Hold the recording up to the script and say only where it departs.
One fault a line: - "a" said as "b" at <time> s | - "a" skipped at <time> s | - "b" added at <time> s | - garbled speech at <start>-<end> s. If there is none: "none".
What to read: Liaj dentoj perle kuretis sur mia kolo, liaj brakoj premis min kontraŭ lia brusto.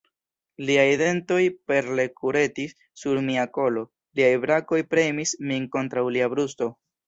none